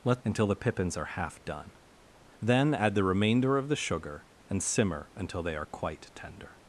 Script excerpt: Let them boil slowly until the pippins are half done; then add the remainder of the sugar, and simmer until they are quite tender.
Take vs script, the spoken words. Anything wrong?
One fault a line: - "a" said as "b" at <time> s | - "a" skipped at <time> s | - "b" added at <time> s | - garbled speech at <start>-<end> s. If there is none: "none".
- "them boil slowly" skipped at 0.2 s